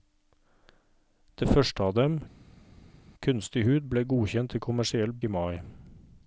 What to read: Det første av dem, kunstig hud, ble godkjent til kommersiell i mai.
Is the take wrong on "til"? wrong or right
right